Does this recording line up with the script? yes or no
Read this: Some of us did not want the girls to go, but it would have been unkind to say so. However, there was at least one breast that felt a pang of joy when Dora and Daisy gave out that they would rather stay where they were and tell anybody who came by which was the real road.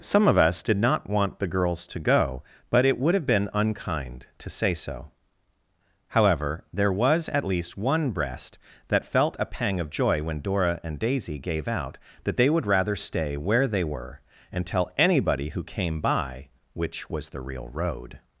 yes